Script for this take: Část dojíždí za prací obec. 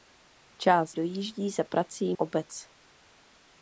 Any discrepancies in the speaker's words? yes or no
no